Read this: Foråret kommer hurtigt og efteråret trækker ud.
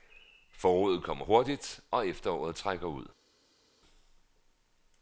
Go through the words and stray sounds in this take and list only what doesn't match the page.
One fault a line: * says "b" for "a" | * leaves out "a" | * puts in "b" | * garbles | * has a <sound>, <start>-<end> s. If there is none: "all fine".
all fine